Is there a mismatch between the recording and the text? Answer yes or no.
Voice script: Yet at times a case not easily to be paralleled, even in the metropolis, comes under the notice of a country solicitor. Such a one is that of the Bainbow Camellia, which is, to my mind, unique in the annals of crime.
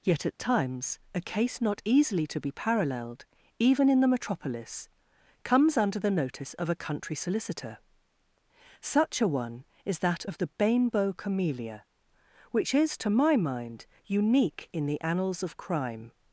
no